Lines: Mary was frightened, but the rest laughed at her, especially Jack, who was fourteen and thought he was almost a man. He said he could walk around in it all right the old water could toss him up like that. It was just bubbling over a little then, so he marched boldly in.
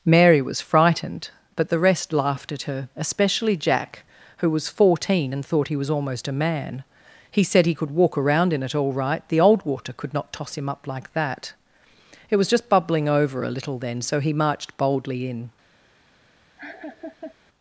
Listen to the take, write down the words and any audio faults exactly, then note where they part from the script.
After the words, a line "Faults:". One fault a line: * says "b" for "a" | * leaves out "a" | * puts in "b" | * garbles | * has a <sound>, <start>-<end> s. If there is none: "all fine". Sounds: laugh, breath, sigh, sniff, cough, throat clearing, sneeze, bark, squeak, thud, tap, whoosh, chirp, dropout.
Mary was frightened, but the rest laughed at her, especially Jack, who was fourteen and thought he was almost a man. He said he could walk around in it all right the old water could not toss him up like that. It was just bubbling over a little then, so he marched boldly in.
Faults:
* puts in "not"
* has a laugh, 16.6-17.3 s